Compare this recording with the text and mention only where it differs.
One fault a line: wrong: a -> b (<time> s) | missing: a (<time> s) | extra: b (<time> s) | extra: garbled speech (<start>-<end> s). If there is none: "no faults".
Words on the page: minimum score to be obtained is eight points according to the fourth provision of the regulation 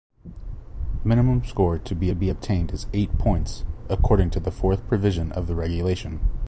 extra: be (2.1 s)